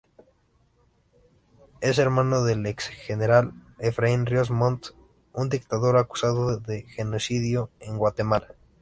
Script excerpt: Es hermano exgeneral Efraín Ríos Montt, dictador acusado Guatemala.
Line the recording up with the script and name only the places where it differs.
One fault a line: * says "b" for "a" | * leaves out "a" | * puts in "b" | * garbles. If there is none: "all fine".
* puts in "del"
* puts in "un"
* puts in "de genocidio en"